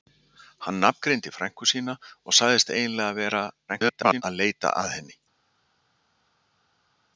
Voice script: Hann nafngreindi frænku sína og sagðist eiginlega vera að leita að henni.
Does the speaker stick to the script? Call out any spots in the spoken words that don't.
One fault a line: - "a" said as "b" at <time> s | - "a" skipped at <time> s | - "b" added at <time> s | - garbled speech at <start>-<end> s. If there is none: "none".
- garbled speech at 3.7-4.2 s